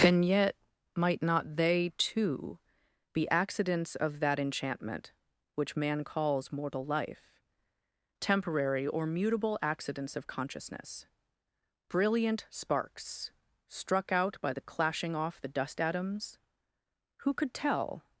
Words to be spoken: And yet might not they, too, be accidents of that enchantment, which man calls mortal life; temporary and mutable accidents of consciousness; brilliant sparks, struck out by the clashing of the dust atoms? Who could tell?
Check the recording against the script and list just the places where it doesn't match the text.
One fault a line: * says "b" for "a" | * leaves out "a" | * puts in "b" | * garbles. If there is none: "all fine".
* says "or" for "and"
* says "off" for "of"